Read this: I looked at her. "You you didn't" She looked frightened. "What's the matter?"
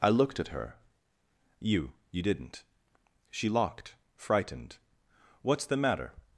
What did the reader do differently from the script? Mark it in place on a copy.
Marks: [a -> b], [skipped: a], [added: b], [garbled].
I looked at her. "You you didn't" She [looked -> locked] frightened. "What's the matter?"